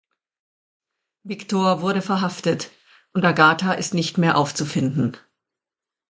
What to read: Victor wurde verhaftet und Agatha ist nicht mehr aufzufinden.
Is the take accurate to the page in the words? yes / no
yes